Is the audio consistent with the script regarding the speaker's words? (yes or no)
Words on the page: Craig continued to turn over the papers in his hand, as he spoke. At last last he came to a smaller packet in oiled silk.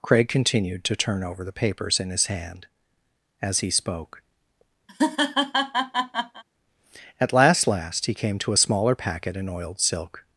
yes